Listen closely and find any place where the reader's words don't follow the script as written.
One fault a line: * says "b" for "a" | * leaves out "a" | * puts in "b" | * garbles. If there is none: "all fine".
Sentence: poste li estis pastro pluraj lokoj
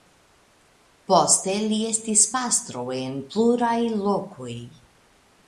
* puts in "en"